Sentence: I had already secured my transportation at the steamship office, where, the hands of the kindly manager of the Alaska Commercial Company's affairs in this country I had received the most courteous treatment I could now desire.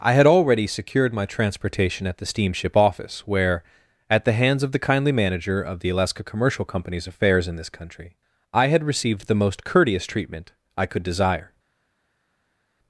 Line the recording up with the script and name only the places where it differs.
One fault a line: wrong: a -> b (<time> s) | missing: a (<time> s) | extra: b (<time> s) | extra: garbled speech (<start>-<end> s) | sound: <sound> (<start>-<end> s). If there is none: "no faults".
extra: at (4.1 s)
missing: now (11.0 s)